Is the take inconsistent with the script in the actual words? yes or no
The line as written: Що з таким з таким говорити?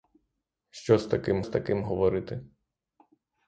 no